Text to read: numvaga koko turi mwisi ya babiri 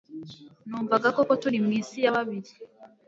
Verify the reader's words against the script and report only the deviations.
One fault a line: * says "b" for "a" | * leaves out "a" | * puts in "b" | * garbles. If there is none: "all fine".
all fine